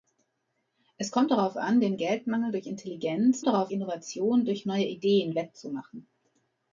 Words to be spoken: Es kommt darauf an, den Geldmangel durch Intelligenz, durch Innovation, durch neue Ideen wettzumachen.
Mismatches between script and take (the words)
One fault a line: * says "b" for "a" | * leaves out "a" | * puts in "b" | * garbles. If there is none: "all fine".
* says "darauf" for "durch"